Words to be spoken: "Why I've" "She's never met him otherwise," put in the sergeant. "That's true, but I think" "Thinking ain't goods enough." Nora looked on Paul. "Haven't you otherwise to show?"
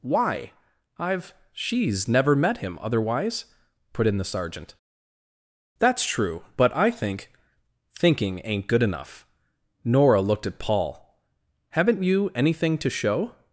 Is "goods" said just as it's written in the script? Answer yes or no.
no